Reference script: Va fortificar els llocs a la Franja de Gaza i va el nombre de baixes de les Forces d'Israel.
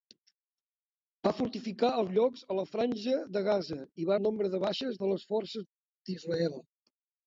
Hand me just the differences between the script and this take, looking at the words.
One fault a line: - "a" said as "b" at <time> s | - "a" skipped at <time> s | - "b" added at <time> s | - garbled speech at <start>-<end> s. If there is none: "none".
none